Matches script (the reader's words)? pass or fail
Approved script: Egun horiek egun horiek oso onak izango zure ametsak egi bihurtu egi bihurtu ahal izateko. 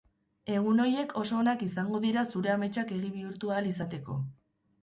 fail